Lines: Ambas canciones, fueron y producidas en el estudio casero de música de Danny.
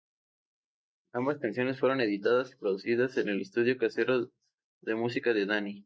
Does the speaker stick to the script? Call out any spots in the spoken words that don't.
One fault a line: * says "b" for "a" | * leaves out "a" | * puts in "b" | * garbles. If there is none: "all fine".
* puts in "editadas"